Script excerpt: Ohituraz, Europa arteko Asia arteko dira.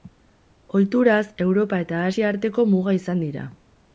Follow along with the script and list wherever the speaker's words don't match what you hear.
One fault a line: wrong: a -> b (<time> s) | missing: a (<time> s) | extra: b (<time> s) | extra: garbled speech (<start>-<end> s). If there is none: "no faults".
wrong: arteko -> eta (1.9 s)
extra: muga izan (2.7 s)